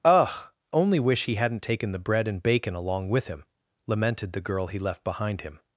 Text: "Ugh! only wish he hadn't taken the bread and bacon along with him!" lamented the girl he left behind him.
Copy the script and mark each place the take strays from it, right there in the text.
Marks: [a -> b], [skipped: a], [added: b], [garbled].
"Ugh! only wish he hadn't taken the bread and bacon along with him!" lamented the girl he left behind him.